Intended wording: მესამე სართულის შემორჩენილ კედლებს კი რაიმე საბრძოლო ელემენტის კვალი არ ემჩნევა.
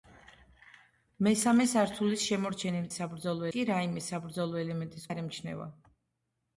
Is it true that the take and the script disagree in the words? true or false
true